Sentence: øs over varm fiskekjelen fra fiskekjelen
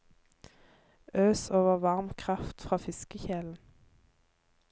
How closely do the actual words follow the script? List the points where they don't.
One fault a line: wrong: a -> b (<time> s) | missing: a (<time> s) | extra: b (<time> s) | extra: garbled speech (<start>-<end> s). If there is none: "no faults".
wrong: fiskekjelen -> kraft (2.2 s)